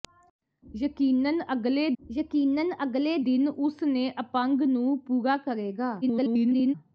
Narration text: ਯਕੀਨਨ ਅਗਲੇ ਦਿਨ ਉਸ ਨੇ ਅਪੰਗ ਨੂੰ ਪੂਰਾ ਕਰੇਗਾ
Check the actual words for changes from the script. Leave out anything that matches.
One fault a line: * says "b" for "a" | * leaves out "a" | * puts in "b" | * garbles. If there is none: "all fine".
* puts in "ਯਕੀਨਨ ਅਗਲੇ"
* garbles